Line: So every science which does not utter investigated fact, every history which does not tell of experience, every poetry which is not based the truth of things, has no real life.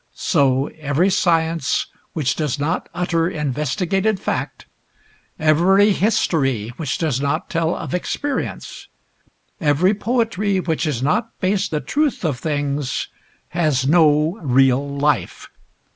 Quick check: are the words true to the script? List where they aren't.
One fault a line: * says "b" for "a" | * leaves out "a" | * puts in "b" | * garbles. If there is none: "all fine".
all fine